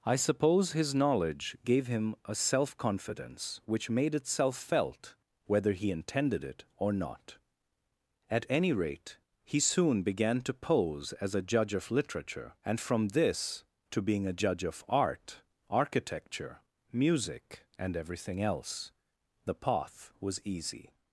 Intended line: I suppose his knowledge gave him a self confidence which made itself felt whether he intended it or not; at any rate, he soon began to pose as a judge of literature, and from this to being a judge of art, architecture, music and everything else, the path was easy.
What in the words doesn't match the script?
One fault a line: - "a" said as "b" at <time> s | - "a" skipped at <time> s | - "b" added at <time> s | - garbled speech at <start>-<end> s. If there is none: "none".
none